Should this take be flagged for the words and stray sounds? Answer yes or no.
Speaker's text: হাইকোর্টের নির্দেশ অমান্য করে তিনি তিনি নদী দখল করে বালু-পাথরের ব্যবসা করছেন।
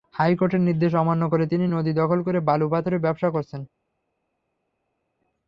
yes